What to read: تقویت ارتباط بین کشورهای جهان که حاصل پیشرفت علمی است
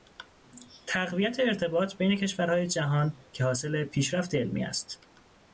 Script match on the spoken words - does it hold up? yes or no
yes